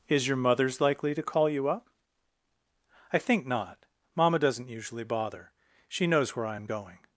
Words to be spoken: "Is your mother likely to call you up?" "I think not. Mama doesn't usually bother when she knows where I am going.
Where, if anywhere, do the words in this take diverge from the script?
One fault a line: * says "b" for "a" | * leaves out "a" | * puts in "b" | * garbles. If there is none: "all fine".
* says "mothers" for "mother"
* leaves out "when"